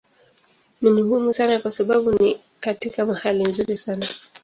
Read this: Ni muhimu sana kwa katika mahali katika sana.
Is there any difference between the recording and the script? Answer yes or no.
yes